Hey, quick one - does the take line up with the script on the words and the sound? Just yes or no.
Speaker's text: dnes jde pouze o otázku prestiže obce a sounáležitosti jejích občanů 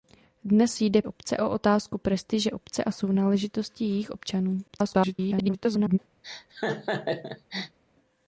no